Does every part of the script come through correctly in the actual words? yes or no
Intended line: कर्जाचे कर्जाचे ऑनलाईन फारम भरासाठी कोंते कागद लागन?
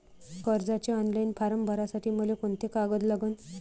no